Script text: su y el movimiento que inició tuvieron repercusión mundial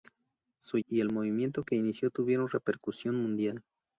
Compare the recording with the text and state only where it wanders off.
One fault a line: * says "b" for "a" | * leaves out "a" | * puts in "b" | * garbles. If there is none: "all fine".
all fine